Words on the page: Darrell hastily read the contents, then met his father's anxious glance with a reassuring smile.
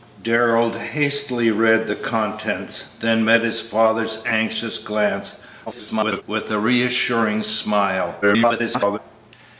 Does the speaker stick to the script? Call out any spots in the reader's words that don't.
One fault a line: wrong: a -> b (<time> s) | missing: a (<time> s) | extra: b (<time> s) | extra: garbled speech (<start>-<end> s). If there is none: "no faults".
extra: garbled speech (5.7-6.2 s)
extra: garbled speech (8.2-9.0 s)